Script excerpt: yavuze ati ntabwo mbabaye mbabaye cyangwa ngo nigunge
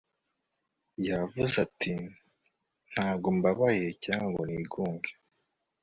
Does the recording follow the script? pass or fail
fail